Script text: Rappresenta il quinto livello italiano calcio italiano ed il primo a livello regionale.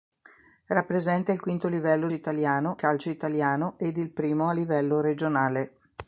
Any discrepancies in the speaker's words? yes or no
no